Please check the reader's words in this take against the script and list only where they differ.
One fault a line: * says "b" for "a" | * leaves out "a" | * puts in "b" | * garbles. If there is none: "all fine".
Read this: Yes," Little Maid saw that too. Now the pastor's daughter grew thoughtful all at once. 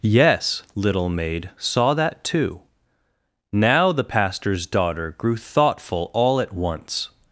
all fine